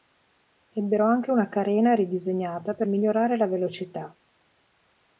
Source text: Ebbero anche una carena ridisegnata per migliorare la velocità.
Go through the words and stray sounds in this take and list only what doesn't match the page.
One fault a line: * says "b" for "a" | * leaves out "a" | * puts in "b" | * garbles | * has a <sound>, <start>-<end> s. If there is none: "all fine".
all fine